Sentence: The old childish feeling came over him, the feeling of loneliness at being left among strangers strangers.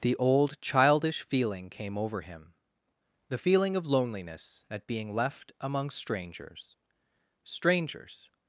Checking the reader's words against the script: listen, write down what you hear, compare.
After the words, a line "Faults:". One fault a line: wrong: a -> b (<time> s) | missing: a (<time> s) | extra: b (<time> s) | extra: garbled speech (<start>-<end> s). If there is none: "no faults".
The old childish feeling came over him, the feeling of loneliness at being left among strangers strangers.
Faults:
no faults